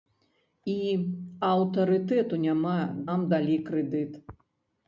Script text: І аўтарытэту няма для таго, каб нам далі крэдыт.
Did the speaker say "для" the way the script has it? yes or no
no